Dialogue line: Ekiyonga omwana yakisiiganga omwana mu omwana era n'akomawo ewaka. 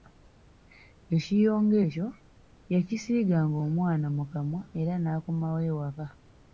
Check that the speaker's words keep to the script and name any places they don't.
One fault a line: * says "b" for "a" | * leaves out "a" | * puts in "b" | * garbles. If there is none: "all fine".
* says "ekyo" for "omwana"
* says "kamwa" for "omwana"